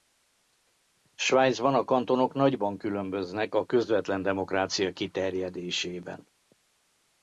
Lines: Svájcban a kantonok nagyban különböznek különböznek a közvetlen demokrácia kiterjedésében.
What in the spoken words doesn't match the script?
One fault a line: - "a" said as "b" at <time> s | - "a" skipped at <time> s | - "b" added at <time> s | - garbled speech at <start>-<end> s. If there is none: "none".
- "különböznek" skipped at 3.5 s